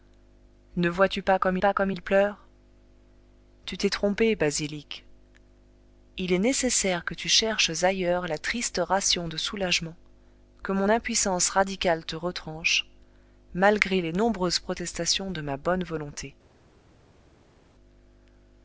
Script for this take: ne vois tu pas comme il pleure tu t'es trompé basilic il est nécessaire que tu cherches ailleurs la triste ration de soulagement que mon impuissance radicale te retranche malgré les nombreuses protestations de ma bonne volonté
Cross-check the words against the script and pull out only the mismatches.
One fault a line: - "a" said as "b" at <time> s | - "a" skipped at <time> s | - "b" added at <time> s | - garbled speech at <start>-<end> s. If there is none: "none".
- "pas comme" added at 1.6 s